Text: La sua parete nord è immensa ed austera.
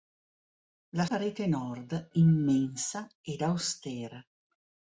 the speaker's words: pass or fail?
fail